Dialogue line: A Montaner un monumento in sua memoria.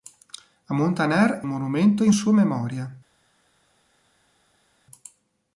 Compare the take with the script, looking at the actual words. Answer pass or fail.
pass